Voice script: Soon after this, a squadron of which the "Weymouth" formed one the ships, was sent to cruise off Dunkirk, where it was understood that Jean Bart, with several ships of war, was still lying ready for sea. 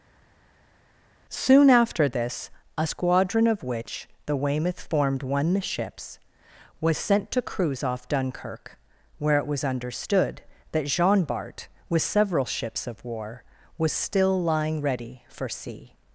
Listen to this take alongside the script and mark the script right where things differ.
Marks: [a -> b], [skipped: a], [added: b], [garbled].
Soon after this, a squadron of which the "Weymouth" formed one the ships, was sent to cruise off Dunkirk, where it was understood that Jean Bart, with several ships of war, was still lying ready for sea.